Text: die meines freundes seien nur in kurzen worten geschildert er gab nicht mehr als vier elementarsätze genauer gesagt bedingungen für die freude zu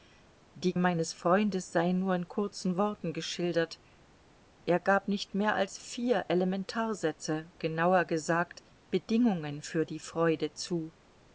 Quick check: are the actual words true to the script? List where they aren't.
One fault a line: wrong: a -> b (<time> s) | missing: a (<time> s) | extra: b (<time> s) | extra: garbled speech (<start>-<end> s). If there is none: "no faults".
no faults